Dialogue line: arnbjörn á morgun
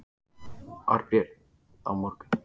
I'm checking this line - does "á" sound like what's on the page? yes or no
yes